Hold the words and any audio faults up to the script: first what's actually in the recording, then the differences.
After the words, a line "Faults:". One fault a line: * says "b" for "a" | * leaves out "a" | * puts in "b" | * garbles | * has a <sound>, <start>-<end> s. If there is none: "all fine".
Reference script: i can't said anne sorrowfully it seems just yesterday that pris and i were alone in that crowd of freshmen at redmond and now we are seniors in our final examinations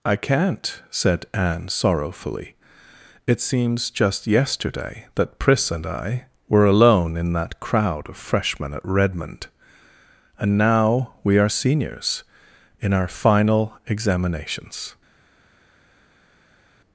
i can't said anne sorrowfully it seems just yesterday that pris and i were alone in that crowd of freshmen at redmond and now we are seniors in our final examinations
Faults:
all fine